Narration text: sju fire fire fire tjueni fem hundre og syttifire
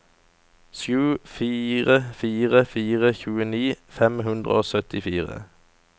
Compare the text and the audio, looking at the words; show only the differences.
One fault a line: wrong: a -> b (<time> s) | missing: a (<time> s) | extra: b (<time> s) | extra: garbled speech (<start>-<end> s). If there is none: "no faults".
no faults